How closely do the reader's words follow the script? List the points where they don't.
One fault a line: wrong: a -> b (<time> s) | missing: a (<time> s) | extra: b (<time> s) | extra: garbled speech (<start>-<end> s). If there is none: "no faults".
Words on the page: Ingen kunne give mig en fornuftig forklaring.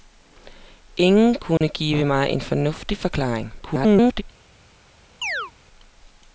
extra: garbled speech (3.6-4.2 s)